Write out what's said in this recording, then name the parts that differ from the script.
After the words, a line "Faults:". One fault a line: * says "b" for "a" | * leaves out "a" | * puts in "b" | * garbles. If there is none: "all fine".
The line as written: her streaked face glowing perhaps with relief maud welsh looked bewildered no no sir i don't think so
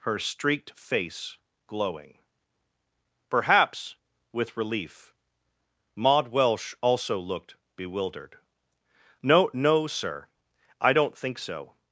her streaked face glowing perhaps with relief maud welsh also looked bewildered no no sir i don't think so
Faults:
* puts in "also"